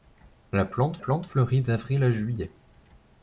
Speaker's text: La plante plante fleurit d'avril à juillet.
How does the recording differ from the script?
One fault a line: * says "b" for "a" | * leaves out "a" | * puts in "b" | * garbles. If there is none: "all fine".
all fine